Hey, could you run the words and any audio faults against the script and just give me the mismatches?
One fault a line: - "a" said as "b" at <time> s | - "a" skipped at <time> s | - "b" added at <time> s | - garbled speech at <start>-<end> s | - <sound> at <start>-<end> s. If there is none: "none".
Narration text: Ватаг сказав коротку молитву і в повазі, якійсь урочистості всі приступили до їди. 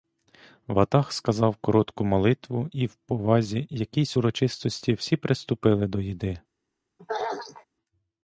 - throat clearing at 7.0-7.7 s